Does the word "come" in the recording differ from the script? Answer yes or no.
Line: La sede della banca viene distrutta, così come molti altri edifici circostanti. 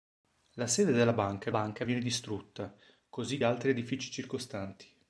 yes